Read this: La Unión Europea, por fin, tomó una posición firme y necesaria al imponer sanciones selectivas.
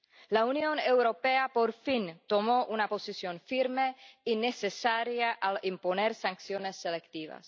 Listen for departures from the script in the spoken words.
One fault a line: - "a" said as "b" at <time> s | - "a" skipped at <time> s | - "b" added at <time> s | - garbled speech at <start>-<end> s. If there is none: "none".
none